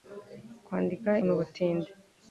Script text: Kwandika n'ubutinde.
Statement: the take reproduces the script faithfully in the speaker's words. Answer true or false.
true